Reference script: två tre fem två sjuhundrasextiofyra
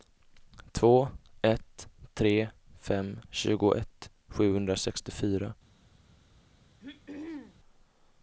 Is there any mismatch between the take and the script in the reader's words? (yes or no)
yes